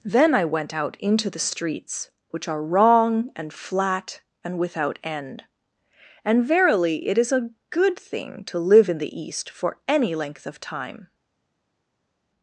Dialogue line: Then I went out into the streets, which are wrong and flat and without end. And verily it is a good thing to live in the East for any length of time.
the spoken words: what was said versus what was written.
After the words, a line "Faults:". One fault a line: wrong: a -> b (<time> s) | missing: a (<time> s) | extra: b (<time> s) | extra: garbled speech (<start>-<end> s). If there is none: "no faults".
Then I went out into the streets, which are wrong and flat and without end. And verily it is a good thing to live in the East for any length of time.
Faults:
no faults